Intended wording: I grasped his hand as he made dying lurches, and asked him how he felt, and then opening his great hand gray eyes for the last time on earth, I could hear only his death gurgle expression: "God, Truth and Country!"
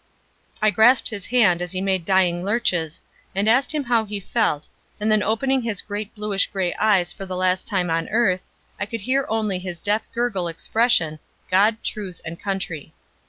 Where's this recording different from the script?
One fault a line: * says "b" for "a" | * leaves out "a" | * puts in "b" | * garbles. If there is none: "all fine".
* says "bluish" for "hand"